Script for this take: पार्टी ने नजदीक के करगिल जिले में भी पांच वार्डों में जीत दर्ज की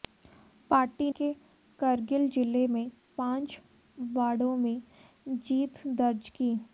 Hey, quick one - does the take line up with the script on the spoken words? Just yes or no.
no